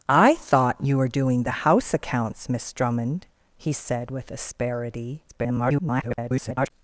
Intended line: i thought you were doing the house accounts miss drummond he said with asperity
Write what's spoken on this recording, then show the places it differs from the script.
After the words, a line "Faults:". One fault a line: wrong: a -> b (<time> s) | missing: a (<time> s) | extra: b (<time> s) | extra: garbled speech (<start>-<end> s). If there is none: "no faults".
i thought you were doing the house accounts miss drummond he said with asperity [garbled]
Faults:
extra: garbled speech (5.3-6.7 s)